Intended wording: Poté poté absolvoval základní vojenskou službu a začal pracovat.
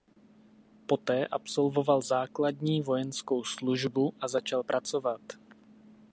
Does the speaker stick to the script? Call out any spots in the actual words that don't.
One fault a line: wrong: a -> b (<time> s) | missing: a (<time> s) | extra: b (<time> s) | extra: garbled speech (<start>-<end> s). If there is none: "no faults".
missing: poté (1.3 s)